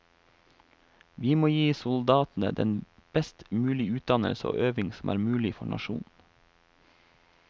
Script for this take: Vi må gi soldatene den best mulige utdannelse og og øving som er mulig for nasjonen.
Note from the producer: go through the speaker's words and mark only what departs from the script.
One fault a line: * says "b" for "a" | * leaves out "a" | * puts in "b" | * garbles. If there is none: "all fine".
* leaves out "og"